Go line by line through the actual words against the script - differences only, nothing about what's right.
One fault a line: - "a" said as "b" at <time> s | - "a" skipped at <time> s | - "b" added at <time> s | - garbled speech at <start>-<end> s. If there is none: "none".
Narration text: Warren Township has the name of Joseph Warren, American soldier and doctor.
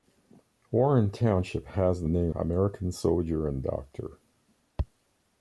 - "of Joseph Warren" skipped at 2.3 s